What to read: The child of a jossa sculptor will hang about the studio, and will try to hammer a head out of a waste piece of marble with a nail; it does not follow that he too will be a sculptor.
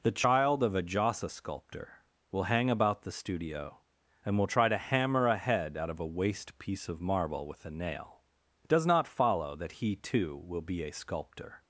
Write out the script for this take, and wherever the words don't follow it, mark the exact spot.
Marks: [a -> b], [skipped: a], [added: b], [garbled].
The child of a jossa sculptor will hang about the studio, and will try to hammer a head out of a waste piece of marble with a nail; it does not follow that he too will be a sculptor.